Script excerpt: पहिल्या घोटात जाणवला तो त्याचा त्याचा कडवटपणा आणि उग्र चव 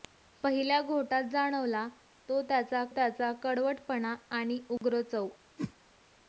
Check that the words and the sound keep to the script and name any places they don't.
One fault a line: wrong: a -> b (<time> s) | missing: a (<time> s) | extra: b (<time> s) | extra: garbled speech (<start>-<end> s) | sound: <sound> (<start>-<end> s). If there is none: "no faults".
sound: dropout (4.8-4.8 s)
sound: whoosh (5.6-5.7 s)